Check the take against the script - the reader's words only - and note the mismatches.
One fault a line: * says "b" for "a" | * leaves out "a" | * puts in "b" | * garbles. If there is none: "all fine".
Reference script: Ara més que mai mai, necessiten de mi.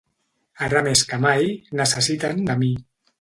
* leaves out "mai"